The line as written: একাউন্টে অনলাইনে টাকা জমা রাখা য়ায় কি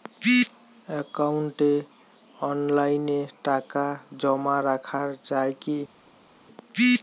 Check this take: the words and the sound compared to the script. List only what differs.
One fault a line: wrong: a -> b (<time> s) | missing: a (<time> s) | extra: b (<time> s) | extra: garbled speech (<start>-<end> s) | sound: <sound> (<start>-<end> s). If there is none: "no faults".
no faults